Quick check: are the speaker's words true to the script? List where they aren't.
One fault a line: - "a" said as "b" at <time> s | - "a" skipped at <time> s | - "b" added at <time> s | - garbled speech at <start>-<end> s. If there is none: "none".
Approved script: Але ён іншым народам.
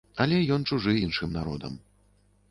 - "чужы" added at 0.7 s